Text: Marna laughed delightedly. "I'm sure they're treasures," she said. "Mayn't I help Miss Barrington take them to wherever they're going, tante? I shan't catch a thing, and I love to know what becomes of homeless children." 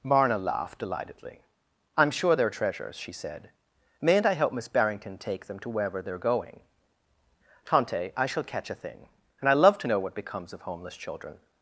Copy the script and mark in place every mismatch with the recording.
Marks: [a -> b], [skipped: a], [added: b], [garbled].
Marna laughed delightedly. "I'm sure they're treasures," she said. "Mayn't I help Miss Barrington take them to wherever they're going, tante? I [shan't -> shall] catch a thing, and I love to know what becomes of homeless children."